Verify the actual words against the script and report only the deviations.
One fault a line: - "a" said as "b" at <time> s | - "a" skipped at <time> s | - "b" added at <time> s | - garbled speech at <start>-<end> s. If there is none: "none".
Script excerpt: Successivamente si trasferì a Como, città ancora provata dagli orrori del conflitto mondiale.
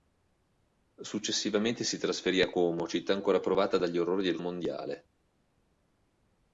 - "conflitto" skipped at 4.4 s